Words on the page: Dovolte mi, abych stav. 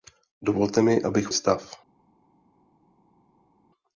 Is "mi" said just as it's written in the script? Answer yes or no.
yes